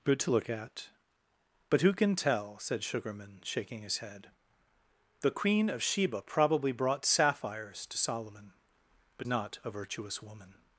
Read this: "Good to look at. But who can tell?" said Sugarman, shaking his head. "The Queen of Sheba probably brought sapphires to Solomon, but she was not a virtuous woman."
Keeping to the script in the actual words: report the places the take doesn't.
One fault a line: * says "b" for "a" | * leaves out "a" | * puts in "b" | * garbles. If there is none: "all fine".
* leaves out "she was"